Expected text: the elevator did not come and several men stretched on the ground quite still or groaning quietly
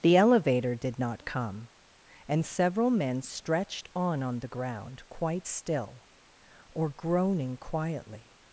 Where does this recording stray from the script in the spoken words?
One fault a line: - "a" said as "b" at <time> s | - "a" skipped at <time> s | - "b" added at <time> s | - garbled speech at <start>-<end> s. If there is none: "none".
- "on" added at 4.2 s